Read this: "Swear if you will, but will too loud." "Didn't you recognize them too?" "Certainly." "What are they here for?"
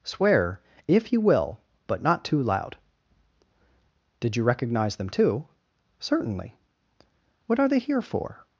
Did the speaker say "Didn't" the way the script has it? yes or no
no